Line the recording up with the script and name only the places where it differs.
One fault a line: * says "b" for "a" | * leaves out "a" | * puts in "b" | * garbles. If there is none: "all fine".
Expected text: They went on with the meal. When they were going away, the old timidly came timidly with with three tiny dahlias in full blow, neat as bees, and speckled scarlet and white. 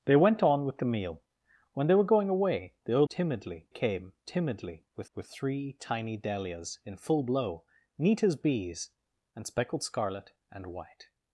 all fine